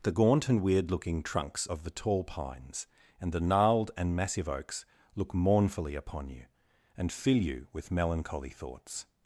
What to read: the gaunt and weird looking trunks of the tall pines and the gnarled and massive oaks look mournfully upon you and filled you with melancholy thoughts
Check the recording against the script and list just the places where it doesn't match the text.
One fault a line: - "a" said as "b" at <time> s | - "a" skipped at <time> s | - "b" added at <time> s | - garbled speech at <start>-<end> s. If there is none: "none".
- "filled" said as "fill" at 7.1 s